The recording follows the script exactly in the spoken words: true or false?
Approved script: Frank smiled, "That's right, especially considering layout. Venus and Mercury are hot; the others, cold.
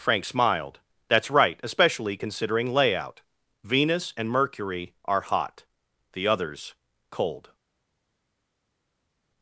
true